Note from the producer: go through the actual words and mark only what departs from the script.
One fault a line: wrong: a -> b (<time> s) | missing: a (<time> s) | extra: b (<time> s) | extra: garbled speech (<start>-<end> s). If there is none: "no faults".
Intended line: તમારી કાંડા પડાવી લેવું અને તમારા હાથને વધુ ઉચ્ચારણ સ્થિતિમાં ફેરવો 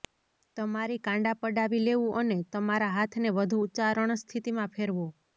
no faults